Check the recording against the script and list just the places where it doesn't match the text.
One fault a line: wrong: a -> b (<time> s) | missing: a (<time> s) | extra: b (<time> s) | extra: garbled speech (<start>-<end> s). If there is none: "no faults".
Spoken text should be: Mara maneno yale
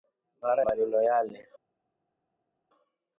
no faults